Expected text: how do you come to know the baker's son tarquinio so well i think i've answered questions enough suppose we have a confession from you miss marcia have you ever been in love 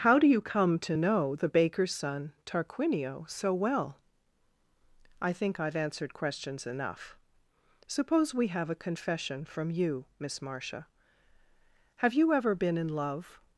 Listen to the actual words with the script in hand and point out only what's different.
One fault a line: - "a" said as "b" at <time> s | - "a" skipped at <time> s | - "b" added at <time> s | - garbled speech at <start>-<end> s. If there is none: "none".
none